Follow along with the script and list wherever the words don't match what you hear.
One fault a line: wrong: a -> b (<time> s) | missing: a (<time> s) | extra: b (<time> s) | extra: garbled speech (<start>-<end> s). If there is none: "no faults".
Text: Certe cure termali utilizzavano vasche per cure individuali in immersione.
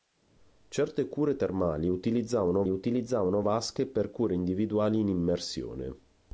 extra: utilizzavano (2.7 s)